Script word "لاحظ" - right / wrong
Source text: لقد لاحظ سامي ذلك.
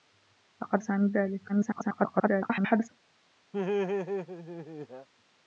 wrong